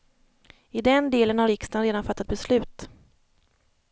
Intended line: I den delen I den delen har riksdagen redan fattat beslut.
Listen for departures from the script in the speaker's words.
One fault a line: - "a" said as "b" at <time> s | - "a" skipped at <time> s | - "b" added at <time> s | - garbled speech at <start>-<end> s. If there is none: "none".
- "I den delen" skipped at 1.4 s